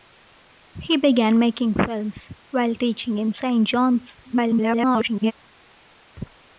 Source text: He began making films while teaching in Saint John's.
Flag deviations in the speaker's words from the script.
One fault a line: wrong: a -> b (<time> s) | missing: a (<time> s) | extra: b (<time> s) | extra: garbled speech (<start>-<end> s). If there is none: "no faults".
extra: garbled speech (4.2-5.3 s)